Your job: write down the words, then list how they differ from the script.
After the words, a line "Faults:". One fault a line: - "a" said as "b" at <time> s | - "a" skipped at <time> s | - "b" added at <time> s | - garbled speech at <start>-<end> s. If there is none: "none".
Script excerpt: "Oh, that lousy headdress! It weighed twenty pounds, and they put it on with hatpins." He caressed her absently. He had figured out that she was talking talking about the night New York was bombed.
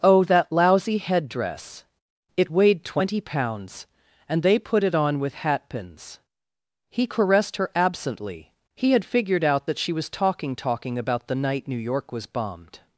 "Oh, that lousy headdress! It weighed twenty pounds, and they put it on with hatpins." He caressed her absently. He had figured out that she was talking talking about the night New York was bombed.
Faults:
none